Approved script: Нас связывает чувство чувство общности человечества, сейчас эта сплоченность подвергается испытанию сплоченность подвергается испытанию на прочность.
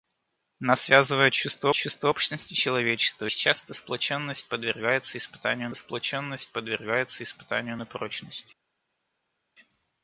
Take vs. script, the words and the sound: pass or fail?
pass